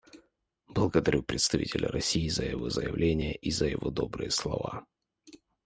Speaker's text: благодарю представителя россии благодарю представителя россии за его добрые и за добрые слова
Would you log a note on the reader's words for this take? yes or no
yes